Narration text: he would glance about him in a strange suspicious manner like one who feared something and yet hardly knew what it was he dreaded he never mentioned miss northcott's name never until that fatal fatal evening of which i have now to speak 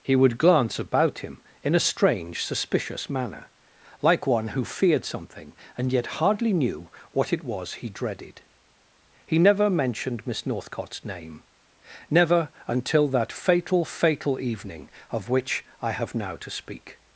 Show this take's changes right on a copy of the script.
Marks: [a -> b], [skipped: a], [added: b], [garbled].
he would glance about him in a strange suspicious manner like one who feared something and yet hardly knew what it was he dreaded he never mentioned miss northcott's name never until that fatal fatal evening of which i have now to speak